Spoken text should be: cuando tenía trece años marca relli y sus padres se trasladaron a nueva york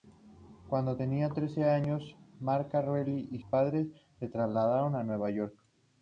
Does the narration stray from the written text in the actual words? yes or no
yes